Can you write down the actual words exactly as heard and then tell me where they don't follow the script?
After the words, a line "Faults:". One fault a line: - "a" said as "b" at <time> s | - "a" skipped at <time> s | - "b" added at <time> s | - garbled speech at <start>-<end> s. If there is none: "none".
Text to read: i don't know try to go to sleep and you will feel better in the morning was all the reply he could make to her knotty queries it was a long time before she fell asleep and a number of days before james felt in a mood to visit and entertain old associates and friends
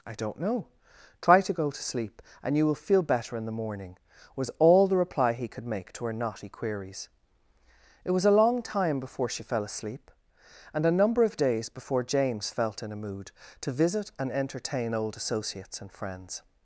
i don't know try to go to sleep and you will feel better in the morning was all the reply he could make to her knotty queries it was a long time before she fell asleep and a number of days before james felt in a mood to visit and entertain old associates and friends
Faults:
none